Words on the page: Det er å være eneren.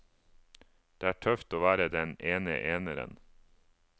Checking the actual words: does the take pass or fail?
fail